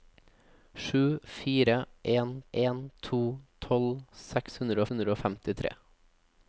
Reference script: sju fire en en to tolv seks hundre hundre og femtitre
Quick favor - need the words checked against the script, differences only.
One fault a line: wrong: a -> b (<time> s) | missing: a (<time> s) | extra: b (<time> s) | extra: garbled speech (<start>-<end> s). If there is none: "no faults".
no faults